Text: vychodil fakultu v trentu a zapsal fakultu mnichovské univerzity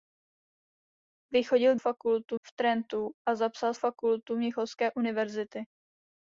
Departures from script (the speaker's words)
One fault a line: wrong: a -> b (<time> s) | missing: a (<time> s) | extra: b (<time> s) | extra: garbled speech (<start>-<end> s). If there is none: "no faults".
no faults